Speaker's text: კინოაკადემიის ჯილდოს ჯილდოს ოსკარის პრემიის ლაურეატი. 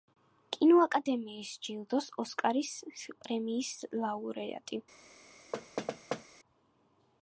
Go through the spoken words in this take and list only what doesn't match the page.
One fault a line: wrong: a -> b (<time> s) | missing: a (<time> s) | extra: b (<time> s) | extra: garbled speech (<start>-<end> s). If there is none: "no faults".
missing: ჯილდოს (2.1 s)